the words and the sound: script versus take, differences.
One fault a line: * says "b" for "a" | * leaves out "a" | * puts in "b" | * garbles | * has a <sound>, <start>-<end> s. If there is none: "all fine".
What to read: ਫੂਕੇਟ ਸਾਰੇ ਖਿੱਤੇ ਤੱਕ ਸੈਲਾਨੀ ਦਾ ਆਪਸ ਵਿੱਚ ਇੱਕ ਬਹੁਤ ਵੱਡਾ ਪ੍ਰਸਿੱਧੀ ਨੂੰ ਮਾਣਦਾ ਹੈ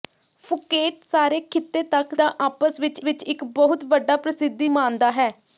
* leaves out "ਸੈਲਾਨੀ"
* puts in "ਵਿੱਚ"
* leaves out "ਨੂੰ"